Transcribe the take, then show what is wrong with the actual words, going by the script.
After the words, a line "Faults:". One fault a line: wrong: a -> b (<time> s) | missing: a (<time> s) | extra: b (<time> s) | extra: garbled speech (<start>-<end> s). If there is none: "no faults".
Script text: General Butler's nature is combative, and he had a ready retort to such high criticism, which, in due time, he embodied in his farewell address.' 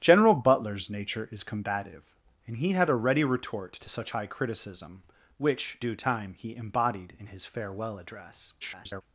General Butler's nature is combative, and he had a ready retort to such high criticism, which, due time, he embodied in his farewell address.' [garbled]
Faults:
missing: in (5.8 s)
extra: garbled speech (8.6-9.0 s)